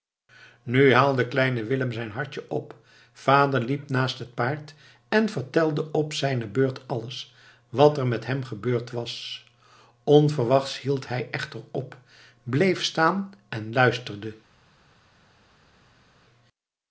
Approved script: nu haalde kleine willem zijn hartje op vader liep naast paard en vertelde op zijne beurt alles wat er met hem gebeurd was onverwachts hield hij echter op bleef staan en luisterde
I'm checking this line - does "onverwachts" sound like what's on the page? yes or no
yes